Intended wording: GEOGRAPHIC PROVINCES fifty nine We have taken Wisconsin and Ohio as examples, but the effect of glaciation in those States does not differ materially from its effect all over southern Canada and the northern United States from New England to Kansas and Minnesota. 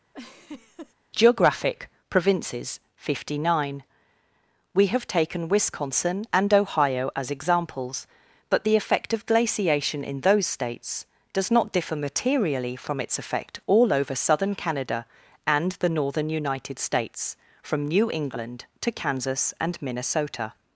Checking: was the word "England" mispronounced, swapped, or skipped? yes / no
no